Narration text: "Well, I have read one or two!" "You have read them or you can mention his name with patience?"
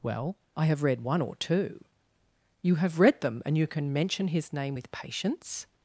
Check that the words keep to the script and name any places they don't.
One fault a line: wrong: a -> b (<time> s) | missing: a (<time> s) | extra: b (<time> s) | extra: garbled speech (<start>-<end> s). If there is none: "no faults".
wrong: or -> and (3.4 s)